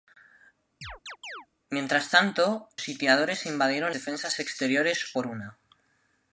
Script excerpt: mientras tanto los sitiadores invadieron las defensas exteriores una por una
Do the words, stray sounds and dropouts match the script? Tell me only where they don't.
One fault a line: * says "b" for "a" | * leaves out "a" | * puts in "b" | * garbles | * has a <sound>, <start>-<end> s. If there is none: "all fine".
* has a chirp, 0.8-1.5 s
* leaves out "los"
* leaves out "las"
* leaves out "una"